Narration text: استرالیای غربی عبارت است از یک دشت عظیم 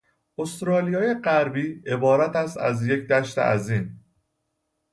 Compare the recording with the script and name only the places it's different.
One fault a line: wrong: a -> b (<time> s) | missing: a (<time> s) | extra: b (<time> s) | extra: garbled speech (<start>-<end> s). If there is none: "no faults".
no faults